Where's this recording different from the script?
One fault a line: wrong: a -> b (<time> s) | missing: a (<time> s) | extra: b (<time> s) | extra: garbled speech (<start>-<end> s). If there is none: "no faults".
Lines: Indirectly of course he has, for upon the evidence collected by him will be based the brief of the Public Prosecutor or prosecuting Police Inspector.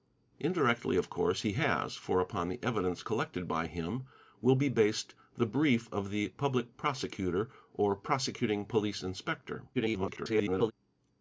extra: garbled speech (9.7-10.7 s)